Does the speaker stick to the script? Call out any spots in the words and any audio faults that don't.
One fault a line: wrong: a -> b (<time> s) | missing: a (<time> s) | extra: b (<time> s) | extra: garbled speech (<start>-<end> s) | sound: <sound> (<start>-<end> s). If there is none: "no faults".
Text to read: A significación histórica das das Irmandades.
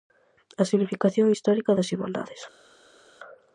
missing: das (1.9 s)